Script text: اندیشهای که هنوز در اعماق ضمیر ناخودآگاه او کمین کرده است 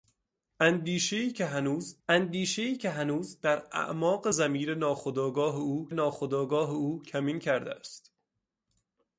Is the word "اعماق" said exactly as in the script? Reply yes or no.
yes